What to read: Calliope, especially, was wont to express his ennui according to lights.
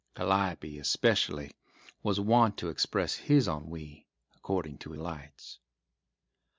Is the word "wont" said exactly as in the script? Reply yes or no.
yes